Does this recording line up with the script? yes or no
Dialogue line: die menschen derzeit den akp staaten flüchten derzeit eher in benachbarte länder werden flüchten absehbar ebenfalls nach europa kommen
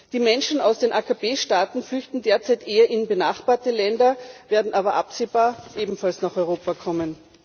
no